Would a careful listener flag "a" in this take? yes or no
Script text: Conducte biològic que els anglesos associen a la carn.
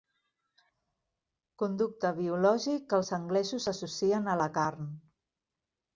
no